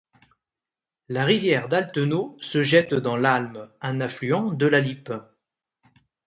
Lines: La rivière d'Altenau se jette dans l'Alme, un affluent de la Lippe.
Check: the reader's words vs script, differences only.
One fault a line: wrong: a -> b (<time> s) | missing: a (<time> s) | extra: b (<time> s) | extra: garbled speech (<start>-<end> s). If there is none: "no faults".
no faults